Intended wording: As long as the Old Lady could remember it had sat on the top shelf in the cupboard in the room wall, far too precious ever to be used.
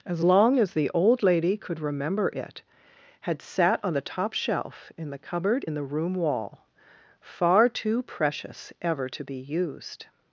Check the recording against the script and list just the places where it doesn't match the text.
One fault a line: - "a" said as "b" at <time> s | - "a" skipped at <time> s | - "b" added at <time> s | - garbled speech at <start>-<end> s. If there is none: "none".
none